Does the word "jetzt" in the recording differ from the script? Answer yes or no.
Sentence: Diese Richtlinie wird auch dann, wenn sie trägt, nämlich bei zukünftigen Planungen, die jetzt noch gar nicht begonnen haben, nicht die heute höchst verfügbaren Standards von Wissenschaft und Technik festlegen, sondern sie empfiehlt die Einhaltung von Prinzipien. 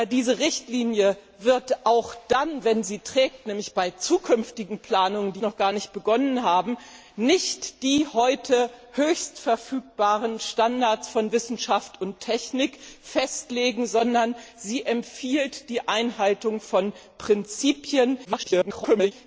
yes